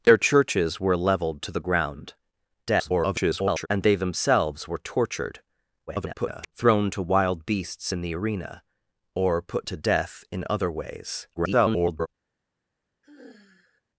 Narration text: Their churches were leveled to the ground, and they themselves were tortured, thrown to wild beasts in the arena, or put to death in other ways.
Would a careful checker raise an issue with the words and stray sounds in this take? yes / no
yes